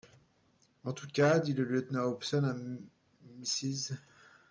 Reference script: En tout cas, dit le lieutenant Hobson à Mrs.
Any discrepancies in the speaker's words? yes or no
no